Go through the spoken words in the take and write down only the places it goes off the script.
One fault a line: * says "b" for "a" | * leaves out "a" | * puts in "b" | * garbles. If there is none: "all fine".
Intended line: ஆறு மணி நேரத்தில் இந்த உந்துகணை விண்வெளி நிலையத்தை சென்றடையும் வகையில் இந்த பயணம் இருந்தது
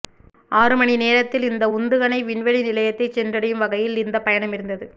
all fine